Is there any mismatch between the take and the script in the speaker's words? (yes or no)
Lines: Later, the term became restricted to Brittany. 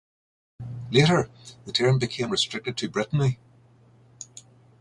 no